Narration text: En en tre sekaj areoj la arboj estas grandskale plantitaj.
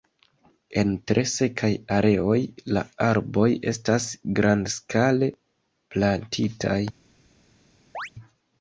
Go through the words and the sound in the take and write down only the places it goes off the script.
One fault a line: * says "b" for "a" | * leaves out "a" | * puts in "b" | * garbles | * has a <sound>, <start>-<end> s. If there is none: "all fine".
* leaves out "en"
* has a chirp, 7.9-8.1 s